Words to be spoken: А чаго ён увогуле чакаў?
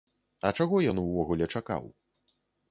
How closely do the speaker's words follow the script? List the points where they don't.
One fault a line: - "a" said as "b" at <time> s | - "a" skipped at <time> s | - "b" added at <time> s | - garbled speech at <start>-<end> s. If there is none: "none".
none